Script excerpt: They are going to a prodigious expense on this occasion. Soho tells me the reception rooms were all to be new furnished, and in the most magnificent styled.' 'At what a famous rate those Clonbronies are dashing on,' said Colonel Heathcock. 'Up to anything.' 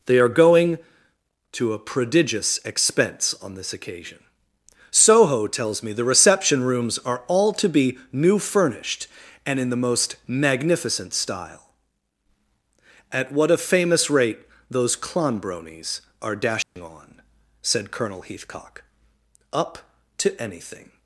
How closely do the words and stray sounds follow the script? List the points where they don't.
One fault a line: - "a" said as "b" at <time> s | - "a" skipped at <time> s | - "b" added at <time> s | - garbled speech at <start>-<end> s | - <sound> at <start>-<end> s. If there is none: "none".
- "were" said as "are" at 7.0 s
- "styled" said as "style" at 11.1 s
- dropout at 16.6-16.8 s